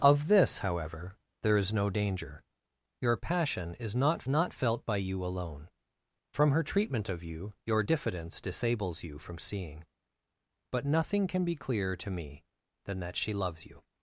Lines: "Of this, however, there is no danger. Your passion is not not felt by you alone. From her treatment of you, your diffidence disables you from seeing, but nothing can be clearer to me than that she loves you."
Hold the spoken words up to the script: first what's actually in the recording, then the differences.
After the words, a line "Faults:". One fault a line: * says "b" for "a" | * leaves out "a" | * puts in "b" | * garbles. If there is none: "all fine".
"Of this, however, there is no danger. Your passion is not not felt by you alone. From her treatment of you, your diffidence disables you from seeing, but nothing can be clearer to me than that she loves you."
Faults:
all fine